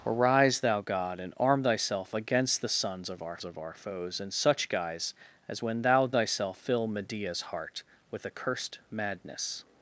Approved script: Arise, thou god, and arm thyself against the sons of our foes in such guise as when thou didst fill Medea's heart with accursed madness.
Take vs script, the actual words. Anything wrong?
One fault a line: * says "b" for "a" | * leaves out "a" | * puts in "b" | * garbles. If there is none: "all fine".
* puts in "of our"
* says "thyself" for "didst"